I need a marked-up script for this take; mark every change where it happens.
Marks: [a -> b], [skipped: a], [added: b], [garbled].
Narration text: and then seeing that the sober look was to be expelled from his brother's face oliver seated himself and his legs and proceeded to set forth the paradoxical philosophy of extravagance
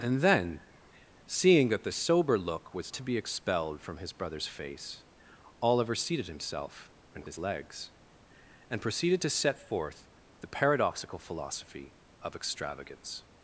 and then seeing that the sober look was to be expelled from his brother's face oliver seated himself and his legs and proceeded to set forth the paradoxical philosophy of extravagance